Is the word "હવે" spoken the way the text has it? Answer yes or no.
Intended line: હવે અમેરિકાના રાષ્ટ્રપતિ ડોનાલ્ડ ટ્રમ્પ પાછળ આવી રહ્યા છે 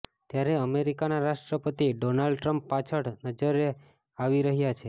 no